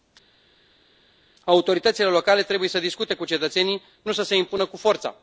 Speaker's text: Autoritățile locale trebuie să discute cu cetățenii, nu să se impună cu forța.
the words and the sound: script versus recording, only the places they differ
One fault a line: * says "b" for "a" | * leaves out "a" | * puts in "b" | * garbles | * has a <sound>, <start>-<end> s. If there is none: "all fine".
all fine